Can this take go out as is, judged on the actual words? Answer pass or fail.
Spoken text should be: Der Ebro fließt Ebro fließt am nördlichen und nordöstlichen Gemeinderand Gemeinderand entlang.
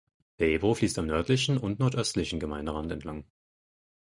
fail